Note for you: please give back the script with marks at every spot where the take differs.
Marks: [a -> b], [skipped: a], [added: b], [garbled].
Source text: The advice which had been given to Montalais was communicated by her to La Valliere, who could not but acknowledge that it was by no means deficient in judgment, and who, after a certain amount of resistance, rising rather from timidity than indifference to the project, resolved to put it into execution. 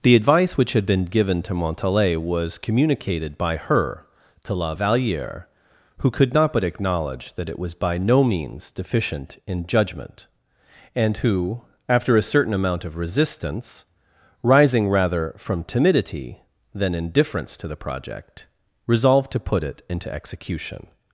The advice which had been given to Montalais was communicated by her to La Valliere, who could not but acknowledge that it was by no means deficient in judgment, and who, after a certain amount of resistance, rising rather from timidity than indifference to the project, resolved to put it into execution.